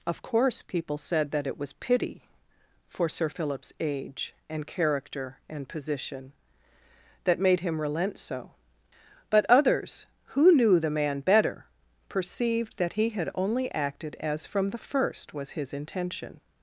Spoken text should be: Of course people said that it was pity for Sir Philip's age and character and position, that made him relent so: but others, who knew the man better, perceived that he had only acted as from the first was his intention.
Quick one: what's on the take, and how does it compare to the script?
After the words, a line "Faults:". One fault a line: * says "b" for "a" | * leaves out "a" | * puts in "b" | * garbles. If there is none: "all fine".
Of course people said that it was pity for Sir Philip's age and character and position, that made him relent so: but others, who knew the man better, perceived that he had only acted as from the first was his intention.
Faults:
all fine